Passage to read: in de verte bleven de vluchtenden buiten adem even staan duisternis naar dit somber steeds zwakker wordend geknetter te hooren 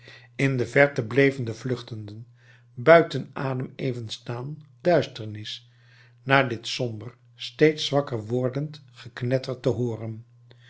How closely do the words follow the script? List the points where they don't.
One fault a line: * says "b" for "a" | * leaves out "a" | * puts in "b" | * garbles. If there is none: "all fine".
all fine